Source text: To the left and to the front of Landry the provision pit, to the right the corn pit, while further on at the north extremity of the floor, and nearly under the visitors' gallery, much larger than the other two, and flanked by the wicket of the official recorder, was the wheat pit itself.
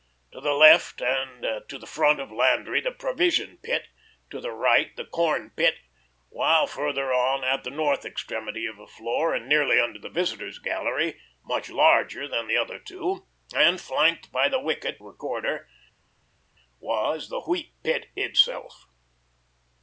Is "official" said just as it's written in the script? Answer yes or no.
no